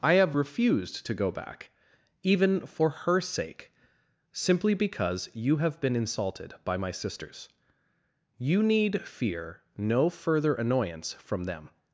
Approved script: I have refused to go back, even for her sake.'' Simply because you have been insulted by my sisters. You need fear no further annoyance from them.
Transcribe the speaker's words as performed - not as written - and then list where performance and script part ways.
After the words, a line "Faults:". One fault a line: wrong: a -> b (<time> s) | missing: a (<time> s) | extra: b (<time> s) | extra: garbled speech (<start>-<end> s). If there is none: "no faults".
I have refused to go back, even for her sake.'' Simply because you have been insulted by my sisters. You need fear no further annoyance from them.
Faults:
no faults